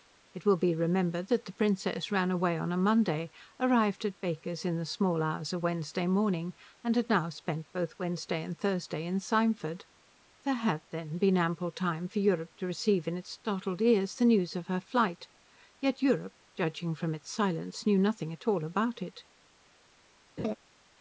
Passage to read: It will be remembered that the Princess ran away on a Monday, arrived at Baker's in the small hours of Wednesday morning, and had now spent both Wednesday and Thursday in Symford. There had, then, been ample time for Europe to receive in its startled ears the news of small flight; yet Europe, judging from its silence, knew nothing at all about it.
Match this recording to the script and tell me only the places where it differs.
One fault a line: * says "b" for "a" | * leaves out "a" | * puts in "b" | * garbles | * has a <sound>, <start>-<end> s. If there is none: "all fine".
* says "her" for "small"
* has a laugh, 20.4-20.6 s